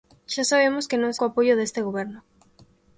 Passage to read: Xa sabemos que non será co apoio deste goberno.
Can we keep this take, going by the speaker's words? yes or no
no